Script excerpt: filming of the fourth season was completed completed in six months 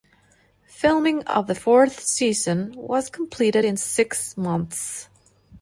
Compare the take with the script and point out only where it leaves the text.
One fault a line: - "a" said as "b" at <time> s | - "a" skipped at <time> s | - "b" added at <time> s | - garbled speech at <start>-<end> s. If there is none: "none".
- "completed" skipped at 3.7 s